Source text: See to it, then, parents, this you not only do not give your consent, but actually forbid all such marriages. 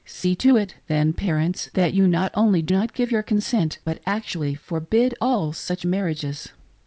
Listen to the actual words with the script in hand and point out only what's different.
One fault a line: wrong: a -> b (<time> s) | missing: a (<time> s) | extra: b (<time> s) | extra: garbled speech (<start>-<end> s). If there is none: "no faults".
wrong: this -> that (1.7 s)